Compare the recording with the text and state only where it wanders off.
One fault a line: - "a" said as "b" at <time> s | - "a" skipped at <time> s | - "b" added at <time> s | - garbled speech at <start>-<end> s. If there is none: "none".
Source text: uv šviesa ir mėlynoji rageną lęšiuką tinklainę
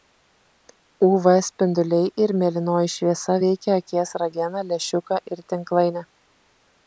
- "šviesa" said as "spinduliai" at 1.5 s
- "šviesa veikia akies" added at 3.0 s
- "ir" added at 5.4 s